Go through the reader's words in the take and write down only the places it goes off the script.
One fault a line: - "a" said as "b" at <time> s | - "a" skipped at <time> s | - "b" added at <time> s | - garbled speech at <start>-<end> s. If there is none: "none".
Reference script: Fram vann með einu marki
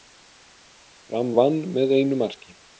none